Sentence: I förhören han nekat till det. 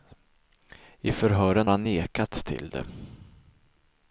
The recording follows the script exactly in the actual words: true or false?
true